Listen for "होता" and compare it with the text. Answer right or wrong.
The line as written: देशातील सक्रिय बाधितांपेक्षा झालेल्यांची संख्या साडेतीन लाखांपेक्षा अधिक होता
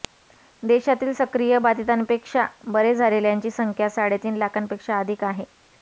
wrong